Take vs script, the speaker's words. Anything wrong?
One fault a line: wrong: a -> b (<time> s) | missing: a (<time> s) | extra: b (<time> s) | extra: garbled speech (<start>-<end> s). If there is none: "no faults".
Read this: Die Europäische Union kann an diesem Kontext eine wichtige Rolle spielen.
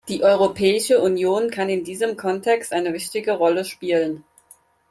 wrong: an -> in (1.7 s)